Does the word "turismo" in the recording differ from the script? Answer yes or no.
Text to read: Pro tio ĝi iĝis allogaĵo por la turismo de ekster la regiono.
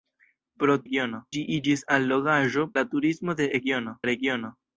no